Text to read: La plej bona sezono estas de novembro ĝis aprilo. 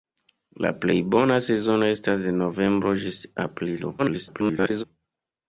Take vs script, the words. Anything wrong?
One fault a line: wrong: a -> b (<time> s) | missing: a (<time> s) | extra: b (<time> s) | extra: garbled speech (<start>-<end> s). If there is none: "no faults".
extra: garbled speech (4.0-4.8 s)